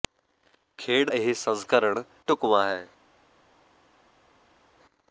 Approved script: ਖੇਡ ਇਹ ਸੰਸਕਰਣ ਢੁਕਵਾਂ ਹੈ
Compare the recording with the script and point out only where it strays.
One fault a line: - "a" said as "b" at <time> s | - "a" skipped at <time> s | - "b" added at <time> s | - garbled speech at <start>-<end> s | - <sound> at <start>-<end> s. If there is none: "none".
none